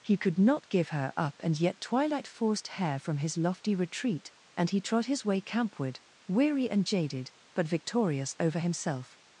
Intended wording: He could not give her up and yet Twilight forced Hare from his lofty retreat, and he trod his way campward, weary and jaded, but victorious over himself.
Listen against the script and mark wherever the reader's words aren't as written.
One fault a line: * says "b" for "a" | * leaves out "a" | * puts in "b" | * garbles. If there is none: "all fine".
all fine